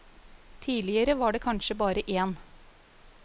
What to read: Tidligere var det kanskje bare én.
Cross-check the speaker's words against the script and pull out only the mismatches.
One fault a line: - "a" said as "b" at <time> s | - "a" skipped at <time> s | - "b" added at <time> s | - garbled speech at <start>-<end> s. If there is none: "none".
none